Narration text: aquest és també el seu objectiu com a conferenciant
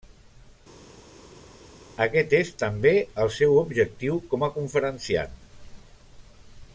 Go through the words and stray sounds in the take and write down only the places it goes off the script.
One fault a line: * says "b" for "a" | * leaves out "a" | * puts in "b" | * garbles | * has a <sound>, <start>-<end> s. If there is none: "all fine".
all fine